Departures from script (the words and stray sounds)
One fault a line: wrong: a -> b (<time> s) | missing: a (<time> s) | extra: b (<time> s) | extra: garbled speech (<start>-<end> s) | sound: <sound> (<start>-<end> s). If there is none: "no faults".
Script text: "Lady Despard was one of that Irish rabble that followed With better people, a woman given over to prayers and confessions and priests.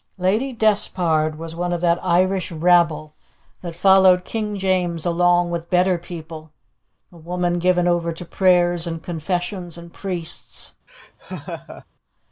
extra: King James along (4.2 s)
sound: laugh (10.9-11.9 s)